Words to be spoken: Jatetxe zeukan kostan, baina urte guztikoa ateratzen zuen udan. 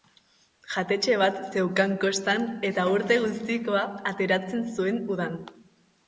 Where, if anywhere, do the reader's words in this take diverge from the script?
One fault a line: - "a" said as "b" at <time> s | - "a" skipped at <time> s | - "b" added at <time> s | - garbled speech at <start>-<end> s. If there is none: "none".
- "bat" added at 1.2 s
- "baina" said as "eta" at 2.7 s